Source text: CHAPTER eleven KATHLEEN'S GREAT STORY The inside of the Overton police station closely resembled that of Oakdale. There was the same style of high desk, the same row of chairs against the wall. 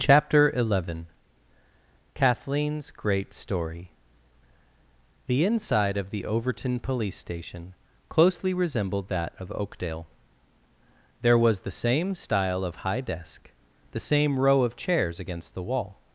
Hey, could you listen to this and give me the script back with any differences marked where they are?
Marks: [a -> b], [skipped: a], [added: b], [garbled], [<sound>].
CHAPTER eleven KATHLEEN'S GREAT STORY The inside of the Overton police station closely resembled that of Oakdale. There was the same style of high desk, the same row of chairs against the wall.